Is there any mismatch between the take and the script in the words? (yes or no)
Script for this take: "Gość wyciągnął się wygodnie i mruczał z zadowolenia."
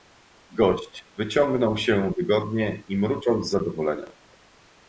no